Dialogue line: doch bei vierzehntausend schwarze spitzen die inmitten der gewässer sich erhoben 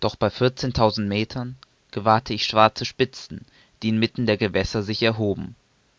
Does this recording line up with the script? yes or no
no